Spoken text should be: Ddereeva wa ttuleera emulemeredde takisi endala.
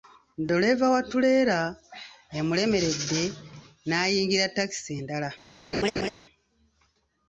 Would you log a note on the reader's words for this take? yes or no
yes